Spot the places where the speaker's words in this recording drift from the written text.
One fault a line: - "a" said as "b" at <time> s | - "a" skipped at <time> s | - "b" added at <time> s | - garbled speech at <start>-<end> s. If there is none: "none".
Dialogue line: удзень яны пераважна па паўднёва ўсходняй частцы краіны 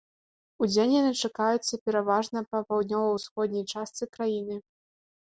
- "чакаюцца" added at 1.3 s